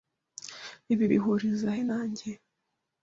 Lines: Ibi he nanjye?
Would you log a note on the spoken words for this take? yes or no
yes